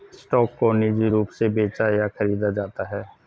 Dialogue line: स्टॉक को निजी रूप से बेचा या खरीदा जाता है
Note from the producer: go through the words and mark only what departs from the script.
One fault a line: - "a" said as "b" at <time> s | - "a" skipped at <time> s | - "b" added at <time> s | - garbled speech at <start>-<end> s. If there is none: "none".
none